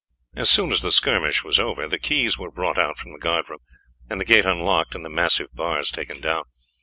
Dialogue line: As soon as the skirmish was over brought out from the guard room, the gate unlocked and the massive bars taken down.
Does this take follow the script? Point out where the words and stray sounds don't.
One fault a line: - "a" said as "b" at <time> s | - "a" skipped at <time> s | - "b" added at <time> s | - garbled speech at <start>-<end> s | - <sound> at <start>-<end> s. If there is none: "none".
- "the keys were" added at 1.9 s
- "and" added at 4.1 s